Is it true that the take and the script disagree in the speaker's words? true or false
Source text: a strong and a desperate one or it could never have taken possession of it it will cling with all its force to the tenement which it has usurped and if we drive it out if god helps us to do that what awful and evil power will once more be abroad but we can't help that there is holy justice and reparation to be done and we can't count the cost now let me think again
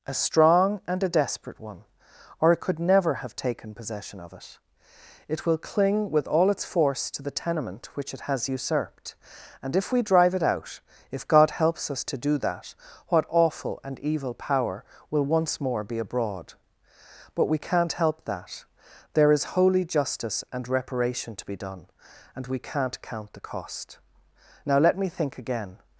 false